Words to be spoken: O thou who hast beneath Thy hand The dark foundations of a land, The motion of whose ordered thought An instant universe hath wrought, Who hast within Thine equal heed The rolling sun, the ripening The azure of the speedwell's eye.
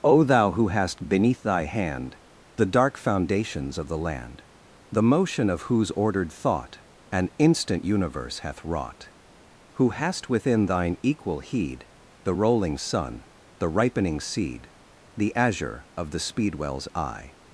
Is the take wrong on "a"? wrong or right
wrong